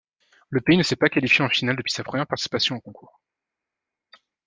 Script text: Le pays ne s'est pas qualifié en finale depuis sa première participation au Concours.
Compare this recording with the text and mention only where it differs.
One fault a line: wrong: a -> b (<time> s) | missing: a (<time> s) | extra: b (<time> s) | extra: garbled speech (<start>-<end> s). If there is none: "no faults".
no faults